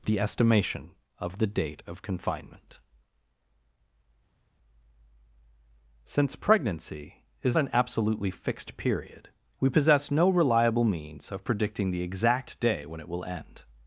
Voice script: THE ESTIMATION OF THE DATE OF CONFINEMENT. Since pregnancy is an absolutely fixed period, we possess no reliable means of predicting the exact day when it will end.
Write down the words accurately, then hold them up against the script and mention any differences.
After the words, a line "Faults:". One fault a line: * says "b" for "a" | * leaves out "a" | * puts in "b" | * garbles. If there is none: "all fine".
THE ESTIMATION OF THE DATE OF CONFINEMENT. Since pregnancy is an absolutely fixed period, we possess no reliable means of predicting the exact day when it will end.
Faults:
all fine